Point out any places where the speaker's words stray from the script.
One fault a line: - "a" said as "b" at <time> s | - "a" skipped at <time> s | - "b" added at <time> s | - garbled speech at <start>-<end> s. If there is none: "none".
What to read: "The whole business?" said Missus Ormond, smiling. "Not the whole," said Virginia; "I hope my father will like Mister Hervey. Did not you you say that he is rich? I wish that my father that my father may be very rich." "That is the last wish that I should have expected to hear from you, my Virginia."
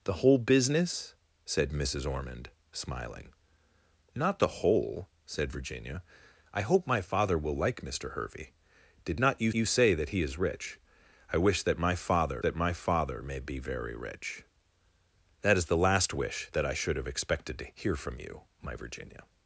none